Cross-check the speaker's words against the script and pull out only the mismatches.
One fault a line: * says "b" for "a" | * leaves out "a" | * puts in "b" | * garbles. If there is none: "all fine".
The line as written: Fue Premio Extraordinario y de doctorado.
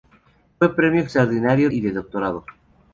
all fine